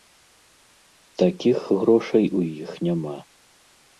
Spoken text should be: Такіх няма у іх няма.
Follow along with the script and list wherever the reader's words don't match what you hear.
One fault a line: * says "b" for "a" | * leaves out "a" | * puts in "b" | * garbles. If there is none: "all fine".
* says "грошай" for "няма"